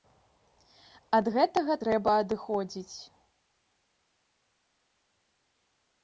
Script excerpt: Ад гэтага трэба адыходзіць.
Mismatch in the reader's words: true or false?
false